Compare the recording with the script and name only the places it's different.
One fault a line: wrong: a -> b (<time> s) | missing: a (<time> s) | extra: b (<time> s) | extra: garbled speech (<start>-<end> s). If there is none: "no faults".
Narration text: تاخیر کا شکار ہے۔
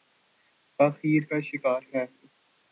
no faults